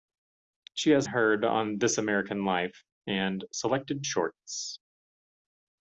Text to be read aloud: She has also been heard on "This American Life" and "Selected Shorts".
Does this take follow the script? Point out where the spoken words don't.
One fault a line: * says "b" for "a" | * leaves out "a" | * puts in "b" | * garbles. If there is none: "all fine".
* leaves out "also been"